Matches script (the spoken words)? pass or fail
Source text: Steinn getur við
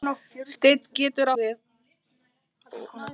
pass